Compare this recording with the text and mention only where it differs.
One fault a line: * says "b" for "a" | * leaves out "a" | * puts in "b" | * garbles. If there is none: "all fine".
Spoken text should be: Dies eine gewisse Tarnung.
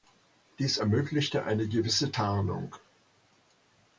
* puts in "ermöglichte"